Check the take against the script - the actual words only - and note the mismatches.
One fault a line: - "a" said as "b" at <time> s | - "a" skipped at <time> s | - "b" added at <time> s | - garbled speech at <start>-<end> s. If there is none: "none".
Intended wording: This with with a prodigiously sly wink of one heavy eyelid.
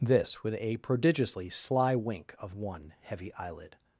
- "with" skipped at 0.5 s